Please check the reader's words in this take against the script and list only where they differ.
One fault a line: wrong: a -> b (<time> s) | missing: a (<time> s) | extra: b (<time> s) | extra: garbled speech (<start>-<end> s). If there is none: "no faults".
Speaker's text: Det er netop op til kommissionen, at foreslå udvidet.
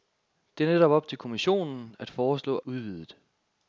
no faults